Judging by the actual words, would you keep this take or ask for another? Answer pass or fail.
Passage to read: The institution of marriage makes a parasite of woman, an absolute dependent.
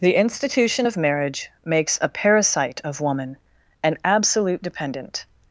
pass